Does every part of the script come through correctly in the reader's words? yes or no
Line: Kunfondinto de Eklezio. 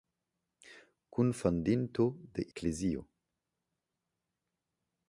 yes